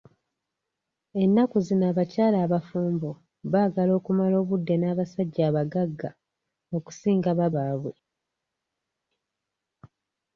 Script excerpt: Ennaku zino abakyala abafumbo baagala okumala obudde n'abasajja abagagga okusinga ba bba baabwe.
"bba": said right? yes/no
no